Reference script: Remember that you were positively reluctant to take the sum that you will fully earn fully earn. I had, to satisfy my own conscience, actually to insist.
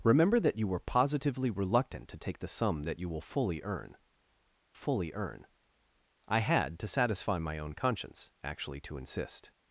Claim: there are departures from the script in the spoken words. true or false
false